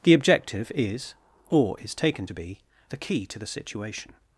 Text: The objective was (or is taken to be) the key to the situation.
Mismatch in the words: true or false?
true